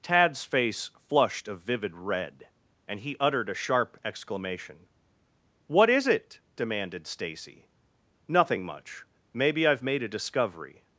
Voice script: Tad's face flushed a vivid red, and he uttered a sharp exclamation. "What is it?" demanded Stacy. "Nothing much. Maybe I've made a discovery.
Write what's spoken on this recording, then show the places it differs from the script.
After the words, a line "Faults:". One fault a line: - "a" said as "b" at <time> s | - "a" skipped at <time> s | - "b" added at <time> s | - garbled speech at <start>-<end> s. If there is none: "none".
Tad's face flushed a vivid red, and he uttered a sharp exclamation. "What is it?" demanded Stacy. "Nothing much. Maybe I've made a discovery.
Faults:
none